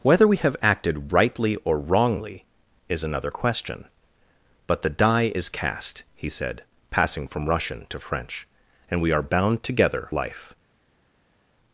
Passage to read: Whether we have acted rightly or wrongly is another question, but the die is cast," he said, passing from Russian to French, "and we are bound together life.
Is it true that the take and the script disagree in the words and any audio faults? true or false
false